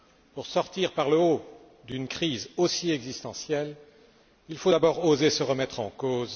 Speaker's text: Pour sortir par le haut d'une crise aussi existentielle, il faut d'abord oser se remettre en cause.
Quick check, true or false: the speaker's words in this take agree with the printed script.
true